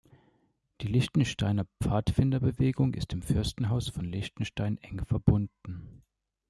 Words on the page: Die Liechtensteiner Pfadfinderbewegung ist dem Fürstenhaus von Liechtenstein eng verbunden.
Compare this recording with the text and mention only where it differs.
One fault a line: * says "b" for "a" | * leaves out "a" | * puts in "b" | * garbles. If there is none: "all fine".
all fine